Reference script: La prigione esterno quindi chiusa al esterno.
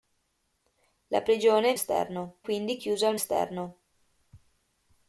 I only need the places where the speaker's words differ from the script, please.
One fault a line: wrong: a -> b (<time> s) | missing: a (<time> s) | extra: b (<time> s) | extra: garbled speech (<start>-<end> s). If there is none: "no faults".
no faults